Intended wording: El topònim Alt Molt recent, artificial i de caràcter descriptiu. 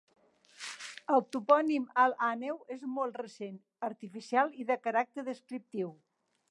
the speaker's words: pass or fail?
fail